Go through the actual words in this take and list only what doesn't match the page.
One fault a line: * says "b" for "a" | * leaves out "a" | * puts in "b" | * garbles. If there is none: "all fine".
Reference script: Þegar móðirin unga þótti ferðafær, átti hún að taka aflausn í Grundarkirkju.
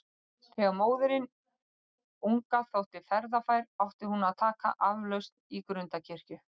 all fine